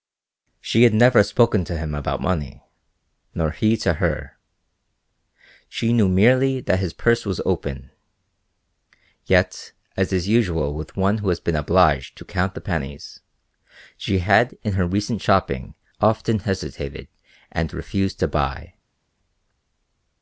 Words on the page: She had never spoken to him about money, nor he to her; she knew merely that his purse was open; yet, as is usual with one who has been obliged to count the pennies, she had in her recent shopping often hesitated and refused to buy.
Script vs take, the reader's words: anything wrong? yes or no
no